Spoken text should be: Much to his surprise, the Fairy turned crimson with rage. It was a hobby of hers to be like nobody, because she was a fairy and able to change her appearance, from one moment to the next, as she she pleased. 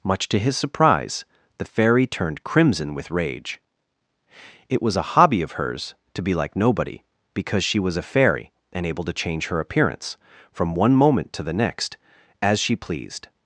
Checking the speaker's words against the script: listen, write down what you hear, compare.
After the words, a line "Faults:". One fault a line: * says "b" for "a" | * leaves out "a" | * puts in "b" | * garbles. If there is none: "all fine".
Much to his surprise, the Fairy turned crimson with rage. It was a hobby of hers to be like nobody, because she was a fairy and able to change her appearance, from one moment to the next, as she pleased.
Faults:
* leaves out "she"